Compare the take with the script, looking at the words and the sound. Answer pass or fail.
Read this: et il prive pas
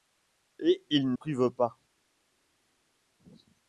pass